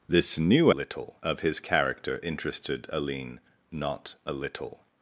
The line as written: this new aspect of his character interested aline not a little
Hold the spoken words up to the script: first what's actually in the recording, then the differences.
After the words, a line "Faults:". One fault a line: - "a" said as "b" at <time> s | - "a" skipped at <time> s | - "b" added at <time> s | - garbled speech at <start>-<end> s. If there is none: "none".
this new little of his character interested aline not a little
Faults:
- "aspect" said as "little" at 0.7 s